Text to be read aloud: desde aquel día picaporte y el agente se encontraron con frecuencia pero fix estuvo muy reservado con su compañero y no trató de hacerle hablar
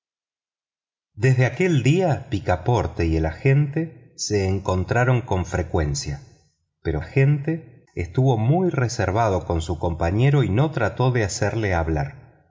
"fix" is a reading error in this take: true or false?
true